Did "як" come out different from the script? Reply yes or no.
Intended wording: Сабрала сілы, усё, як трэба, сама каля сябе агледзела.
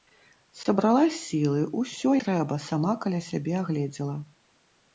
yes